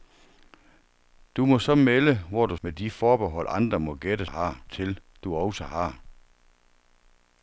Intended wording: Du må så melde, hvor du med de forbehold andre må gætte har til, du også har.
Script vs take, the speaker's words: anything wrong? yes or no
no